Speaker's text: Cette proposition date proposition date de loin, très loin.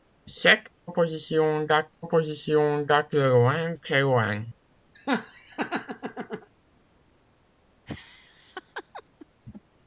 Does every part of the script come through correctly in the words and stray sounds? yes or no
no